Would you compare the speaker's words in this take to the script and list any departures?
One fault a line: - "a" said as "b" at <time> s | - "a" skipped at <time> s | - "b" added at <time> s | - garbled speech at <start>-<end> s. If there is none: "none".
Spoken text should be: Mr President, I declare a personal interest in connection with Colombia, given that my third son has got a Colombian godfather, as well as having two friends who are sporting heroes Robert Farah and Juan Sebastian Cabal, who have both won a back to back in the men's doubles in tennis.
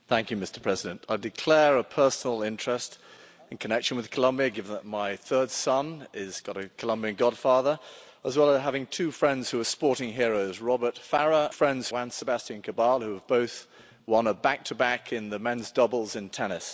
- "and" said as "friends" at 11.5 s